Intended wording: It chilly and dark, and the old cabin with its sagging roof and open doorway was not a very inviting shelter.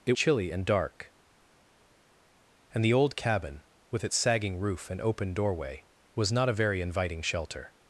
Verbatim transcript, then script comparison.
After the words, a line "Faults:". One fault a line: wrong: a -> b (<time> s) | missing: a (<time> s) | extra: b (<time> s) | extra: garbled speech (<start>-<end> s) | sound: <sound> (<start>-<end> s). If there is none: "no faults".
It chilly and dark, and the old cabin with its sagging roof and open doorway was not a very inviting shelter.
Faults:
no faults